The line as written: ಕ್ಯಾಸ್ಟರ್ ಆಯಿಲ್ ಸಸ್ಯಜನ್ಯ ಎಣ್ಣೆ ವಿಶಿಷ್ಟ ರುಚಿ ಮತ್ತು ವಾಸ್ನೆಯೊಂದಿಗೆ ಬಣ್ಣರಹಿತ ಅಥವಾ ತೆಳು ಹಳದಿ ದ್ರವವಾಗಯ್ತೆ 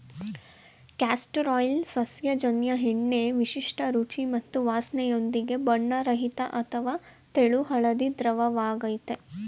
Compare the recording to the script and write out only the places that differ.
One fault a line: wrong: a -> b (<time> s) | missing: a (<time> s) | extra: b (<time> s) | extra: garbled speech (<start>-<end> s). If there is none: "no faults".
no faults